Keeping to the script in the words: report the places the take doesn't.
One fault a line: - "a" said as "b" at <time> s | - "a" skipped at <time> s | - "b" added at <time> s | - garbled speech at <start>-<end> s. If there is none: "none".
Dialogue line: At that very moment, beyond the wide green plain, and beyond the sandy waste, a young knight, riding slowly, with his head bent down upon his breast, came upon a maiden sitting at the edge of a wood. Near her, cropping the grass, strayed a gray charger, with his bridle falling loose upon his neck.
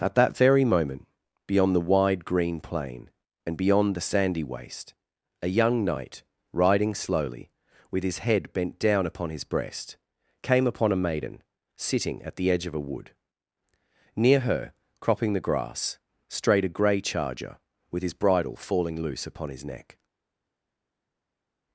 none